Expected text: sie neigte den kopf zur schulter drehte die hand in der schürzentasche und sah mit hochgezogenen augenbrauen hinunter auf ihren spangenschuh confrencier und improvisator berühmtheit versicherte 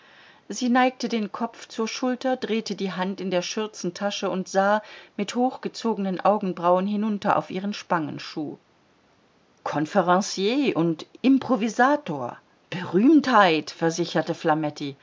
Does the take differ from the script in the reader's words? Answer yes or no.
no